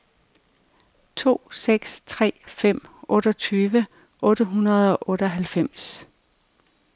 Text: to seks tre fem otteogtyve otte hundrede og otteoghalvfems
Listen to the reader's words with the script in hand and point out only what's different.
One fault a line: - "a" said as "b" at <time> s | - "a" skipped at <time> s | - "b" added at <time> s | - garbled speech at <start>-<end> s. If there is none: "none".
none